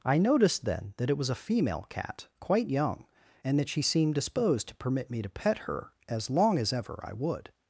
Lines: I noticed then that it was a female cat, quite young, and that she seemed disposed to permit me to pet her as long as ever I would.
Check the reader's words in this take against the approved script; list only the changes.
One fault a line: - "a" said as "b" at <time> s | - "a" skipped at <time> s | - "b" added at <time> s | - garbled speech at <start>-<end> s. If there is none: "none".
none